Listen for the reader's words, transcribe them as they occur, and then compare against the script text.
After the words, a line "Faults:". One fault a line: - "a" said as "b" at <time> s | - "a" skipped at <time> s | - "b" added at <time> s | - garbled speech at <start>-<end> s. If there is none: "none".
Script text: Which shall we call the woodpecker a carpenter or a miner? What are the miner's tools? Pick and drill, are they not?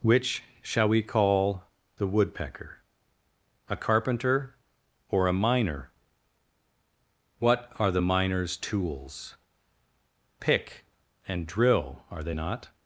Which shall we call the woodpecker a carpenter or a miner? What are the miner's tools? Pick and drill, are they not?
Faults:
none